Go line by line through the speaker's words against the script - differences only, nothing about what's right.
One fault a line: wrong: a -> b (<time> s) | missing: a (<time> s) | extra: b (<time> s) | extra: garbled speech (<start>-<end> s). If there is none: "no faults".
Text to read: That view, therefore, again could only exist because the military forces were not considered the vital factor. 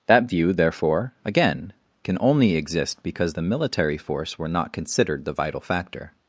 wrong: could -> can (2.0 s)
wrong: forces -> force (4.0 s)